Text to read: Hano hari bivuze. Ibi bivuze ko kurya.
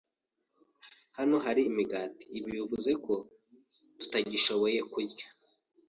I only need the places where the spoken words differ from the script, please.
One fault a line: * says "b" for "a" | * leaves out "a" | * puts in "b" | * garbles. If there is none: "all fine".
* says "imigati" for "bivuze"
* puts in "tutagishoboye"